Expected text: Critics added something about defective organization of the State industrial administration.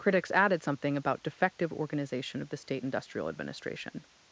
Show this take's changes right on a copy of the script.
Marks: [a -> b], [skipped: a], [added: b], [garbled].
Critics added something about defective organization of the State industrial administration.